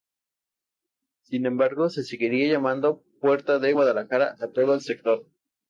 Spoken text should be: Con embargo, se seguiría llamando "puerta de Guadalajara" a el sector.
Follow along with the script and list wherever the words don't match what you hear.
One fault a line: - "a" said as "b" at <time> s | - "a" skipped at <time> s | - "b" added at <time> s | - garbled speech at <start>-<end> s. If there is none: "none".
- "Con" said as "Sin" at 1.2 s
- "todo" added at 4.5 s